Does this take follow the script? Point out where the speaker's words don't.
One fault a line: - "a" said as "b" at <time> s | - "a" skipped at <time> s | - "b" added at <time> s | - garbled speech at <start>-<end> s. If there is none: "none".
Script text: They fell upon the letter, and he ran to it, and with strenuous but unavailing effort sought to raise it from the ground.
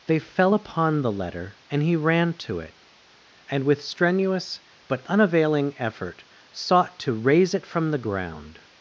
none